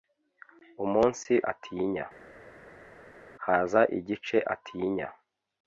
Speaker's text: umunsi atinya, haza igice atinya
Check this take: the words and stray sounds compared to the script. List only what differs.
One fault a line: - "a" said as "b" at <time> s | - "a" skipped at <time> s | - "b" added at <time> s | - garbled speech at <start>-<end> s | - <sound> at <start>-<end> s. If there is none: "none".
none